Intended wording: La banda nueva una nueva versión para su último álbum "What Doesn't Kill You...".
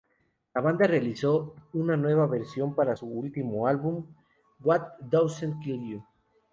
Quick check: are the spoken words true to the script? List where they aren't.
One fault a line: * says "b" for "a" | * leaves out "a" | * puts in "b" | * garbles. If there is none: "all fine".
* says "realizó" for "nueva"